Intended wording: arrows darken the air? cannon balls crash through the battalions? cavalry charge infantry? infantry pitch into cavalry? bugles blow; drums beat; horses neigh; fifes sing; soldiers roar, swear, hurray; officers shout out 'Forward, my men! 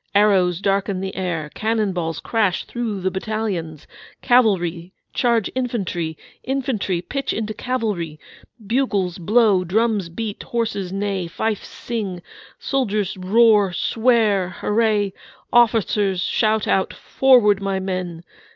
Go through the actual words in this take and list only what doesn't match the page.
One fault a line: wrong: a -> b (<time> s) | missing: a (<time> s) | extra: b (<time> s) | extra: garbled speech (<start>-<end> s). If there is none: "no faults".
no faults